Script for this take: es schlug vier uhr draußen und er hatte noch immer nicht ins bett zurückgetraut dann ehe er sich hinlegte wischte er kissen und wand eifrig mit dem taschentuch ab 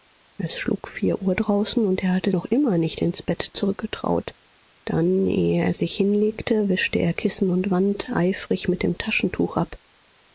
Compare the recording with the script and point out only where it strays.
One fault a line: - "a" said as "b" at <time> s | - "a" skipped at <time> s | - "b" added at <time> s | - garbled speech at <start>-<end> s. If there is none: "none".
none